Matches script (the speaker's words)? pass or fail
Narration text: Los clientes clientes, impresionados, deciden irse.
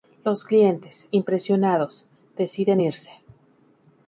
fail